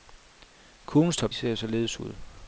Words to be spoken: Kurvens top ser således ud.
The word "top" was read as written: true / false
true